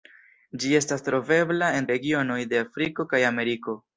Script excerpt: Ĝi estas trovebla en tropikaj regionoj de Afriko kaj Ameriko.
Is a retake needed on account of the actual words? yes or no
yes